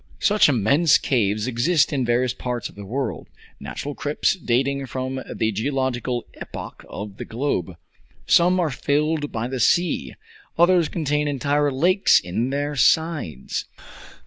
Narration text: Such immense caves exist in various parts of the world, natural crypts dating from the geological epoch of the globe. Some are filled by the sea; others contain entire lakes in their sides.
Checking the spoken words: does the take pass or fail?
pass